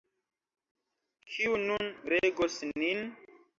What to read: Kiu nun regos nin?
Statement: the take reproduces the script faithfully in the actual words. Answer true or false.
true